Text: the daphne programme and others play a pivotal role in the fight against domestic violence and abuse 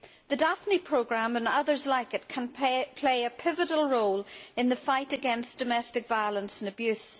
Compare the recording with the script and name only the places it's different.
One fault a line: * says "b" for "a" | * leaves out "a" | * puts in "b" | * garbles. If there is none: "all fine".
* puts in "like it can"